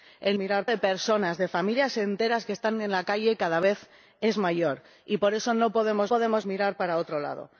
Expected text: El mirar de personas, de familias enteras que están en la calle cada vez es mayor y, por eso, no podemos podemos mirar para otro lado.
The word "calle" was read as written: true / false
true